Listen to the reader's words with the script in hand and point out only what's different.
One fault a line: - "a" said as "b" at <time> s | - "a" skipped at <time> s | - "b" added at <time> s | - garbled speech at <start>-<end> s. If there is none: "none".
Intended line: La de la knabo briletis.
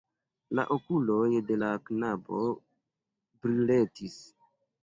- "okuloj" added at 0.8 s